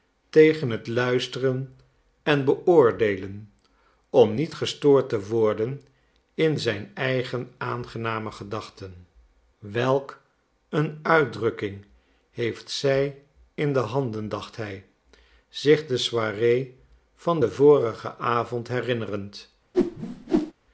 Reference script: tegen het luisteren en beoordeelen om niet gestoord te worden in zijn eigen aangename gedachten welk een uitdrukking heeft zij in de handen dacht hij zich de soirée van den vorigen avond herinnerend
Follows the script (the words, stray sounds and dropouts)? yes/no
no